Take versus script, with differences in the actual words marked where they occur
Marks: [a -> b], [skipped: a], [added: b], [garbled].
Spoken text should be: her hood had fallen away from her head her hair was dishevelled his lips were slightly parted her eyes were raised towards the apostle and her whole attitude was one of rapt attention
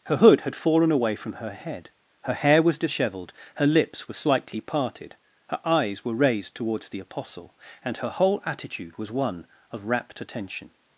her hood had fallen away from her head her hair was dishevelled [his -> her] lips were slightly parted her eyes were raised towards the apostle and her whole attitude was one of rapt attention